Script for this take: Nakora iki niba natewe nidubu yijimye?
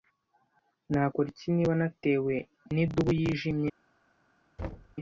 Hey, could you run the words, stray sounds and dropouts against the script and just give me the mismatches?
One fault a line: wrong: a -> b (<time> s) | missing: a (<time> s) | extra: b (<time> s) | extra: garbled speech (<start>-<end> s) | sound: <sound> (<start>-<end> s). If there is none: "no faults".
sound: thud (4.6-5.0 s)